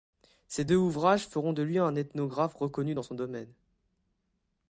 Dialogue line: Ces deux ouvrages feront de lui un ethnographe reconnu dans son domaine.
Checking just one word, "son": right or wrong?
right